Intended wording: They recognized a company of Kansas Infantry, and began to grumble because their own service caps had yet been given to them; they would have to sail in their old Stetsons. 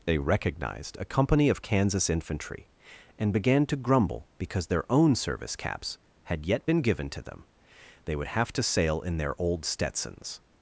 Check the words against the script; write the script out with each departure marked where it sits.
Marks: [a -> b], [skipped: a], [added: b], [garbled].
They recognized a company of Kansas Infantry, and began to grumble because their own service caps had yet been given to them; they would have to sail in their old Stetsons.